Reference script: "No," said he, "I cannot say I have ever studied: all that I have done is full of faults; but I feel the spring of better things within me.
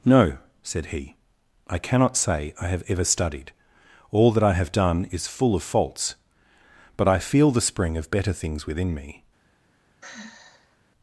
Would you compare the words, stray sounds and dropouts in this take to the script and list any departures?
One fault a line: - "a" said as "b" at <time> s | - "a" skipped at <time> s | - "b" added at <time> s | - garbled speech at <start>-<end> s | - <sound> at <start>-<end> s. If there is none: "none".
- sigh at 10.0-10.8 s